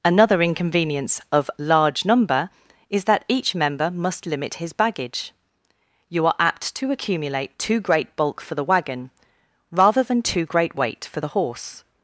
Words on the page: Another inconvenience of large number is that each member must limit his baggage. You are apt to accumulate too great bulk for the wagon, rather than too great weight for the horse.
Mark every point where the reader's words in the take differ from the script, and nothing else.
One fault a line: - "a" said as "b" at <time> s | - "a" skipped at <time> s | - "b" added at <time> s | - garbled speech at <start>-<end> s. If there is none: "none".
none